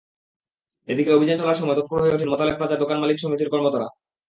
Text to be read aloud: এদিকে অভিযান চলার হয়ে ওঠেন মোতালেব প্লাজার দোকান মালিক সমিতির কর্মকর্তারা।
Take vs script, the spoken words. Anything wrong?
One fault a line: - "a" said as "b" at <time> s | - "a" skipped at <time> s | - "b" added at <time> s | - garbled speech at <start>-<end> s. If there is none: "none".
- "সময় তৎপর" added at 1.6 s